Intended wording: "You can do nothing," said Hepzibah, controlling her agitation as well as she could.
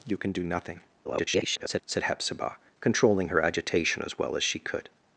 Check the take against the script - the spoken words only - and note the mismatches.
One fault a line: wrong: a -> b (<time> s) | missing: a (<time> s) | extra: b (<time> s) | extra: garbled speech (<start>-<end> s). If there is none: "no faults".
extra: garbled speech (1.0-1.8 s)